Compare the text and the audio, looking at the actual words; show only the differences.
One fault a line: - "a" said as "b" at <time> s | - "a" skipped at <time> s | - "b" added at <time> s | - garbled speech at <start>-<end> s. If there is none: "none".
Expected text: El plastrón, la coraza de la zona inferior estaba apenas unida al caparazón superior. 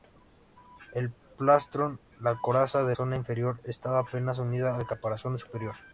- "la" skipped at 3.0 s